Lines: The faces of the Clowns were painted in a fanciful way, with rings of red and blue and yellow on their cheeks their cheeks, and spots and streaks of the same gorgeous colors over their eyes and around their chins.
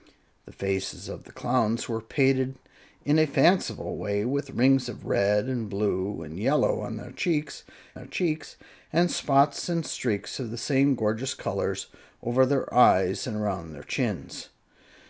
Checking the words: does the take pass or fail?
pass